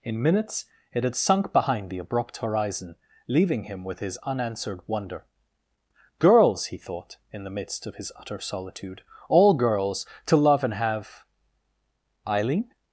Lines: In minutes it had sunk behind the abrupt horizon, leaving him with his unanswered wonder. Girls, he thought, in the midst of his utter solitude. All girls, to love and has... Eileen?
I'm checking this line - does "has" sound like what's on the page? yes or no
no